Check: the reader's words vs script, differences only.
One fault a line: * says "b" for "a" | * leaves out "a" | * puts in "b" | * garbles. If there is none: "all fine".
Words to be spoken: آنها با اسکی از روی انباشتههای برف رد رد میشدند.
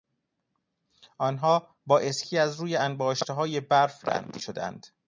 * leaves out "رد"